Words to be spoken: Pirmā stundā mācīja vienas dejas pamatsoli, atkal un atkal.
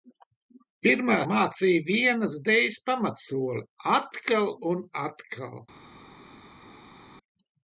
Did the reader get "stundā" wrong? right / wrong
wrong